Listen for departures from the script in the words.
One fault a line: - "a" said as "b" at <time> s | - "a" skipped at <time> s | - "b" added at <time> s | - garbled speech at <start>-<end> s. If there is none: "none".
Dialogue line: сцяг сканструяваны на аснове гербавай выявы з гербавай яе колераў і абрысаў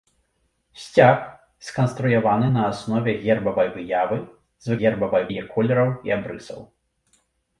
none